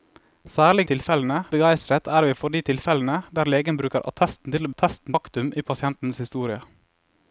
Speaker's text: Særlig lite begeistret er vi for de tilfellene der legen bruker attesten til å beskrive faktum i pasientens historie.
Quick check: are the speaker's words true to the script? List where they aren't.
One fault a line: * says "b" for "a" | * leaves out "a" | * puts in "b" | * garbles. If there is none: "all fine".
* says "tilfellene" for "lite"
* says "attesten" for "beskrive"